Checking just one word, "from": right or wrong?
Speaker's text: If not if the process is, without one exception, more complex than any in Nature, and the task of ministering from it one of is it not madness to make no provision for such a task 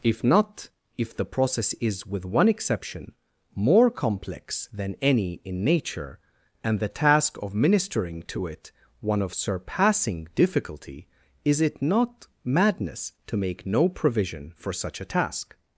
wrong